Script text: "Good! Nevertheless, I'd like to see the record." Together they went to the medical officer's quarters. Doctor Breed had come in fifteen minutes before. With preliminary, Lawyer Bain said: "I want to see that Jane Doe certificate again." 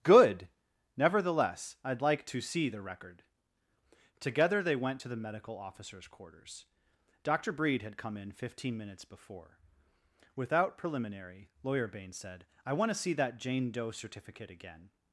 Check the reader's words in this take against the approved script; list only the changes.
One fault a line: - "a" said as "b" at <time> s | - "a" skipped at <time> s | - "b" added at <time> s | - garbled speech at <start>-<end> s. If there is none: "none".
- "With" said as "Without" at 10.4 s